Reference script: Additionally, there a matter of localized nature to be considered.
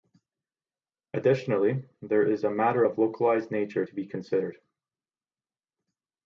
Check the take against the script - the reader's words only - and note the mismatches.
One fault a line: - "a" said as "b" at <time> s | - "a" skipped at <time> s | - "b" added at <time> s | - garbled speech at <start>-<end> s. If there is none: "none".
- "is" added at 2.3 s